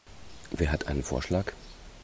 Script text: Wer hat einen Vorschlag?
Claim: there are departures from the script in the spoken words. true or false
false